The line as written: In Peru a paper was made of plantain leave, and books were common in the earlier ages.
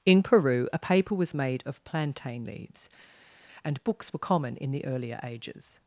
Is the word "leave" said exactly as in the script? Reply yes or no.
no